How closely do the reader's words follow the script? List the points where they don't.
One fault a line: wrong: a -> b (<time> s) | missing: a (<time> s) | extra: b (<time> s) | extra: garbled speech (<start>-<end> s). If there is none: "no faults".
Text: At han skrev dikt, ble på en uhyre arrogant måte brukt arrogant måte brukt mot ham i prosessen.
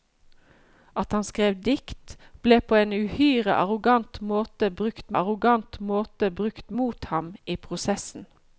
no faults